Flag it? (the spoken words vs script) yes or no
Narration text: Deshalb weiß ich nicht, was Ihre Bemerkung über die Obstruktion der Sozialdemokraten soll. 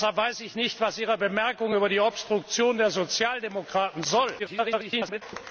yes